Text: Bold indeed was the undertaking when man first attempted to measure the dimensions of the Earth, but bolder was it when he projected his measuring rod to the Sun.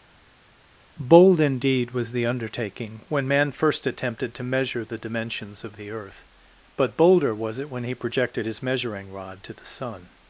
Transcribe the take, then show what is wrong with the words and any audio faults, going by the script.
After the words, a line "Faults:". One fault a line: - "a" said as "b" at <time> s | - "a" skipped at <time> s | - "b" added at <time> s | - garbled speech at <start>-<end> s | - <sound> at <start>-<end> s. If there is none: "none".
Bold indeed was the undertaking when man first attempted to measure the dimensions of the Earth, but bolder was it when he projected his measuring rod to the Sun.
Faults:
none